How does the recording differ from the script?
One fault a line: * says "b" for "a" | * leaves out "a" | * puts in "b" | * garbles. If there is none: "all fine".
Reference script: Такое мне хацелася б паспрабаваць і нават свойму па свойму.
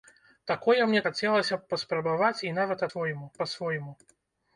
all fine